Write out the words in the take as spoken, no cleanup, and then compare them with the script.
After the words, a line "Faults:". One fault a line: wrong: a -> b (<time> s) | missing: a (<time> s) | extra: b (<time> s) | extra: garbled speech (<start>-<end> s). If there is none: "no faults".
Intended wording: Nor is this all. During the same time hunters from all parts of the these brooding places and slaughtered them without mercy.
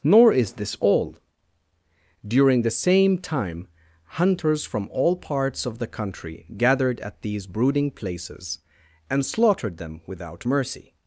Nor is this all. During the same time hunters from all parts of the country gathered at these brooding places and slaughtered them without mercy.
Faults:
extra: country gathered at (5.9 s)